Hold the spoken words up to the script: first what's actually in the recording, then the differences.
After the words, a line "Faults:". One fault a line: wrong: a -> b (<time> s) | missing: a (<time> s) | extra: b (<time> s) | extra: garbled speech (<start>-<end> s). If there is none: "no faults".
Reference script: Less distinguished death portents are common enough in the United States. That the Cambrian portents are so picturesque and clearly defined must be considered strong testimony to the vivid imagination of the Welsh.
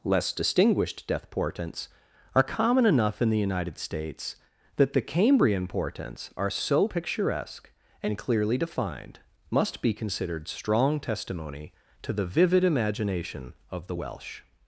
Less distinguished death portents are common enough in the United States. That the Cambrian portents are so picturesque and clearly defined must be considered strong testimony to the vivid imagination of the Welsh.
Faults:
no faults